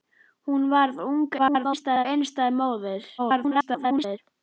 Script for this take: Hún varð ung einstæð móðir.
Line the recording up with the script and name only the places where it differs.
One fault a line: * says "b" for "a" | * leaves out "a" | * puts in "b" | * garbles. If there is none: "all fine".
* garbles
* garbles